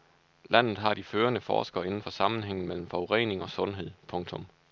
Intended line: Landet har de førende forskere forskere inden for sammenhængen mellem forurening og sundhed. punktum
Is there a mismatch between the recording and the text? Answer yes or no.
yes